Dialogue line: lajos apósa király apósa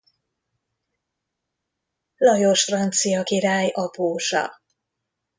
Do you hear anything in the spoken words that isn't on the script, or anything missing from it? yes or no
yes